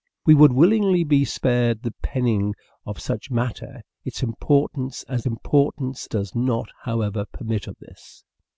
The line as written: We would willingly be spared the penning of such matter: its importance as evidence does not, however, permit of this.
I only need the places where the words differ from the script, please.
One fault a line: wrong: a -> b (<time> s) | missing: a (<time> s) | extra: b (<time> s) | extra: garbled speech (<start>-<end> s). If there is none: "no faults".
wrong: evidence -> importance (5.3 s)